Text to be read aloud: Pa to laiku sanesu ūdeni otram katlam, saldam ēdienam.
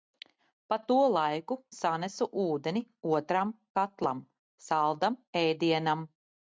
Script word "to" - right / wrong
right